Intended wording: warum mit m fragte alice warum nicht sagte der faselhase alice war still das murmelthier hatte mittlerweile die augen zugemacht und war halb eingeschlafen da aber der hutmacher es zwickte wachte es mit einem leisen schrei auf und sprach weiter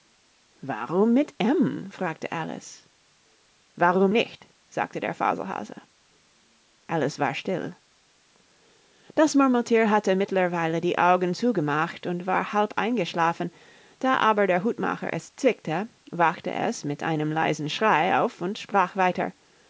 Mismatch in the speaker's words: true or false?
false